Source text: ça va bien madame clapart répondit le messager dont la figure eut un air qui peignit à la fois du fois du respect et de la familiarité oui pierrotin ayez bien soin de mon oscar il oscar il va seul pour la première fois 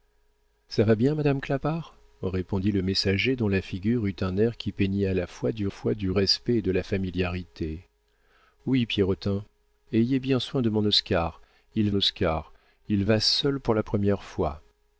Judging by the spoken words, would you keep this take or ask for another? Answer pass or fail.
pass